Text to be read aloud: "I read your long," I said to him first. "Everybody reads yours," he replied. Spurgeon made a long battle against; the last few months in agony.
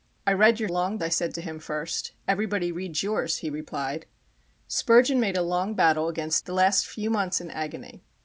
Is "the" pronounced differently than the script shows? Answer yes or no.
no